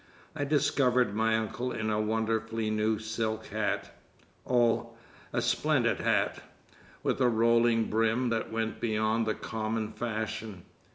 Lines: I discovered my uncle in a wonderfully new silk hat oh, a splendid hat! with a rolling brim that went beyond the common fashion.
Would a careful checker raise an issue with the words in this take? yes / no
no